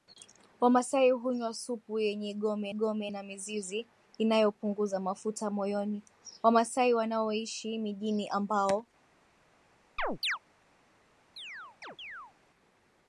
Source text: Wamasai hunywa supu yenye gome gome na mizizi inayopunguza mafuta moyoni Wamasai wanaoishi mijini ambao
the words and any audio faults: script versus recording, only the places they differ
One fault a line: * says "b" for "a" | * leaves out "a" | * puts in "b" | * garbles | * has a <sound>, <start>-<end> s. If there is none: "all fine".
* has a chirp, 10.0-10.4 s
* has a chirp, 11.4-12.3 s